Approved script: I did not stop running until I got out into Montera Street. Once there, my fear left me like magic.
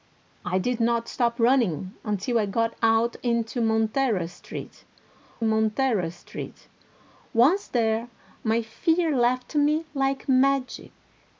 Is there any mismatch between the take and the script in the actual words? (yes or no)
yes